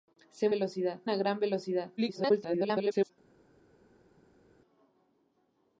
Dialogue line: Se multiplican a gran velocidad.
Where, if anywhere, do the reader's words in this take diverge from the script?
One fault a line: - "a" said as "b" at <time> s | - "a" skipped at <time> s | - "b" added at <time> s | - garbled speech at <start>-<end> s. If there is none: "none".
- "multiplican" said as "velocidad" at 0.5 s
- garbled speech at 2.0-3.1 s